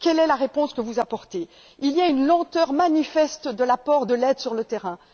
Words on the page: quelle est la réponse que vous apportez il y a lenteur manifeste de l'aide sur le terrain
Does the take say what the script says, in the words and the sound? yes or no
no